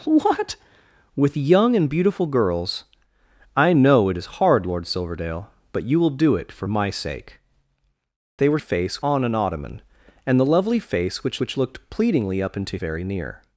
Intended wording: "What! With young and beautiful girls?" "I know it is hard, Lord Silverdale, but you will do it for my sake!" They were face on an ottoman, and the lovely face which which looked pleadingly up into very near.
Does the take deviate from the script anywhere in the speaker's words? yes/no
no